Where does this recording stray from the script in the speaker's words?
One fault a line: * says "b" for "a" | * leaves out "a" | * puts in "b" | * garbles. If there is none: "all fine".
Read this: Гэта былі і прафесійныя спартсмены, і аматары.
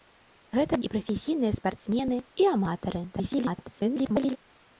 * leaves out "былі"
* garbles